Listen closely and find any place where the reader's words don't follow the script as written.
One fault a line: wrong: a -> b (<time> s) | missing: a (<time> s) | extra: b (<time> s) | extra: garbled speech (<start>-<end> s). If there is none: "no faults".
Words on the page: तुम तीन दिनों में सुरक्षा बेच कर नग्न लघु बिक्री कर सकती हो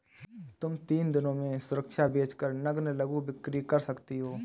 no faults